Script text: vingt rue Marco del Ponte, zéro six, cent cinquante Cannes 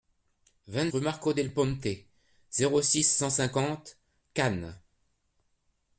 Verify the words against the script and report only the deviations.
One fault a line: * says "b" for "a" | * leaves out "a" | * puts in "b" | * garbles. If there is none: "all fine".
all fine